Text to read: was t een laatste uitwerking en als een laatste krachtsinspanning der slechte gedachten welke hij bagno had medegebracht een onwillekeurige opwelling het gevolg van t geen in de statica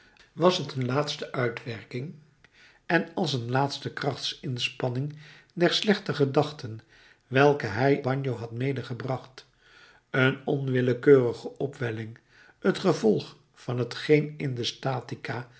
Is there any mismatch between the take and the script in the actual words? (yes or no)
no